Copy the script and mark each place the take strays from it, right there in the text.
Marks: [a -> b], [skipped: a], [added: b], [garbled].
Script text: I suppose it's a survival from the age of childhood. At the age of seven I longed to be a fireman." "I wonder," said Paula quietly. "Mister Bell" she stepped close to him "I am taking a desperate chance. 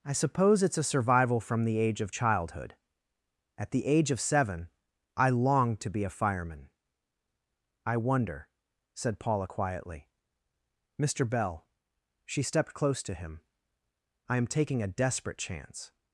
I suppose it's a survival from the age of childhood. At the age of seven I longed to be a fireman." "I wonder," said Paula quietly. "Mister Bell" she stepped close to him "I am taking a desperate chance.